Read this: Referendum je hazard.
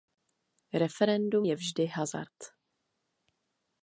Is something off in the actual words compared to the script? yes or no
yes